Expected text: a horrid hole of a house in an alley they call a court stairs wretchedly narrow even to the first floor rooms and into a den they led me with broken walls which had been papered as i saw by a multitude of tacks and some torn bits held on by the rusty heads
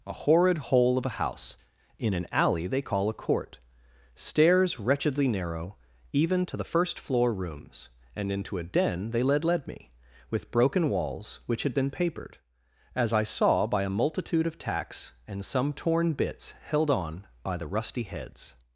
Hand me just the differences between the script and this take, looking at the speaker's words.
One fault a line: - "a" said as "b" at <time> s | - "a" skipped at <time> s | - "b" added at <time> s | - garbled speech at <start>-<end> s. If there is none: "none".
- "led" added at 9.4 s